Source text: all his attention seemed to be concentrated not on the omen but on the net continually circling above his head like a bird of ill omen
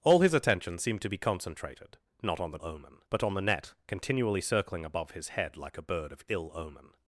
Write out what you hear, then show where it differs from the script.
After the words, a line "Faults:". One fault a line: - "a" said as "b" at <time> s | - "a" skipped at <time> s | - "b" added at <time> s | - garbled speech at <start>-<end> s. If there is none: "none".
all his attention seemed to be concentrated not on the omen but on the net continually circling above his head like a bird of ill omen
Faults:
none